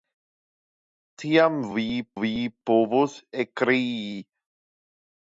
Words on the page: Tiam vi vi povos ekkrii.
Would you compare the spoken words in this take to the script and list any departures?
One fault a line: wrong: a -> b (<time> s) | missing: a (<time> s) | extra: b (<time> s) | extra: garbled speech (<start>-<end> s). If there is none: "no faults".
no faults